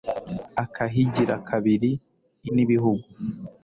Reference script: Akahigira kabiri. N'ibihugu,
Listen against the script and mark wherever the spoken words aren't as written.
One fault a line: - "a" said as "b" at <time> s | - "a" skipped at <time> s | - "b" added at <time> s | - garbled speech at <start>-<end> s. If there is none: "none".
none